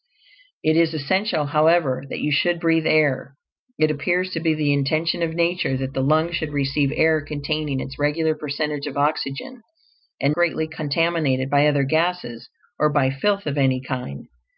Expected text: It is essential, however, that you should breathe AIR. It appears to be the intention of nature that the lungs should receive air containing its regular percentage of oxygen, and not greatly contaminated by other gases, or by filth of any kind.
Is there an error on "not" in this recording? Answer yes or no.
yes